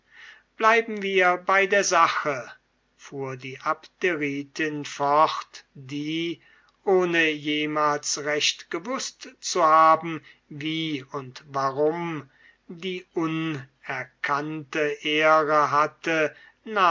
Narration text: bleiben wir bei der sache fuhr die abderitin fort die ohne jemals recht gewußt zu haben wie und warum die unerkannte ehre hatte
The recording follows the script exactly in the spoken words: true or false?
true